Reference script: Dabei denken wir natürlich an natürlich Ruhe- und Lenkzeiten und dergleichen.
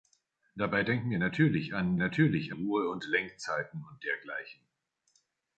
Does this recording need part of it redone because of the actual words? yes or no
no